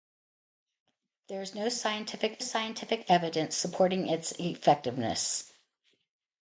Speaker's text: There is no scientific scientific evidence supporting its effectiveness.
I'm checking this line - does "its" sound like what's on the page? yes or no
yes